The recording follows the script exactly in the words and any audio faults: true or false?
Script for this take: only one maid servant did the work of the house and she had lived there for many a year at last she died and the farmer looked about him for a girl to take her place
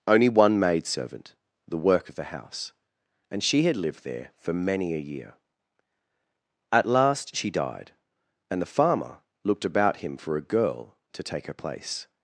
false